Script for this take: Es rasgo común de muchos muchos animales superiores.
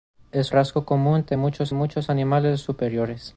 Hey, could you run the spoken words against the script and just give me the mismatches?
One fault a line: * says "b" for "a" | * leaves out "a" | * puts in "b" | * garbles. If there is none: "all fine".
all fine